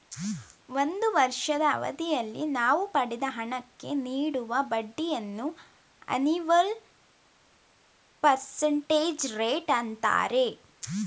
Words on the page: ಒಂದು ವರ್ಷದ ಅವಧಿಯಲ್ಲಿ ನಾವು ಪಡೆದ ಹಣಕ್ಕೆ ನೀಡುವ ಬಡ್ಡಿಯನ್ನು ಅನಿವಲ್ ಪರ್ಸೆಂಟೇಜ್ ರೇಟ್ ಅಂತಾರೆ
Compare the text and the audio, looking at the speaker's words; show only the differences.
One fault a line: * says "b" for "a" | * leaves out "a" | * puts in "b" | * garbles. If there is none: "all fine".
all fine